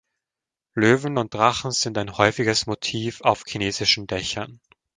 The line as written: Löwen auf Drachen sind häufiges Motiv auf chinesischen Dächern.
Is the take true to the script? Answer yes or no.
no